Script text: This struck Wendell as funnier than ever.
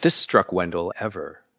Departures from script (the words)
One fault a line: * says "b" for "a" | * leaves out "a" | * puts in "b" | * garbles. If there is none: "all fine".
* leaves out "as funnier than"